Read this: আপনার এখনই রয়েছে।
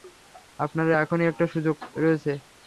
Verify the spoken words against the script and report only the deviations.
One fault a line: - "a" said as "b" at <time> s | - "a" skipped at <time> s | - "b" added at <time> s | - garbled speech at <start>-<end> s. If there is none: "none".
- "একটা সুযোগ" added at 1.3 s